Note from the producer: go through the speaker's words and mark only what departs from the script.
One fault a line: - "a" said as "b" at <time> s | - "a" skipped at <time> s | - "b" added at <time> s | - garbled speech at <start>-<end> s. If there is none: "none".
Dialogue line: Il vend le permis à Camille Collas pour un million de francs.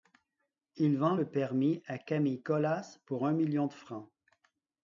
none